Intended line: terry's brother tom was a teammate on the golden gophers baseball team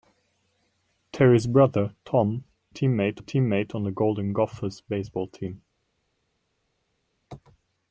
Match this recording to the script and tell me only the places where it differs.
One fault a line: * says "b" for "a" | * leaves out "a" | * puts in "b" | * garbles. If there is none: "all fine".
* says "teammate" for "was"